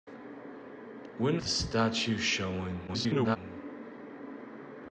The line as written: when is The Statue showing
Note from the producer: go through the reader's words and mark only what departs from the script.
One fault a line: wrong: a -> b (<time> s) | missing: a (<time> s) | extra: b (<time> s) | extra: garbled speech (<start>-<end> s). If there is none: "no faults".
missing: is (1.4 s)
extra: garbled speech (2.9-3.4 s)